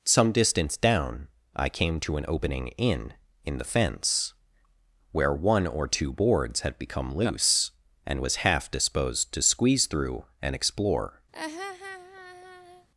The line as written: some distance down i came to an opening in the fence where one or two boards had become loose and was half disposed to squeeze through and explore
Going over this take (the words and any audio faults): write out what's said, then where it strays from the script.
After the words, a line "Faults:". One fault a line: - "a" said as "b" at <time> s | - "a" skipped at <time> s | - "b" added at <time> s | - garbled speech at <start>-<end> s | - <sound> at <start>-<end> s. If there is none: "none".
some distance down i came to an opening in in the fence where one or two boards had become loose and was half disposed to squeeze through and explore
Faults:
- "in" added at 3.5 s
- laugh at 11.3-12.9 s